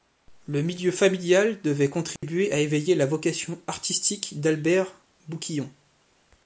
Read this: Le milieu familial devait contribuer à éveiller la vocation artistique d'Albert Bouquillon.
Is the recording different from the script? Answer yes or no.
no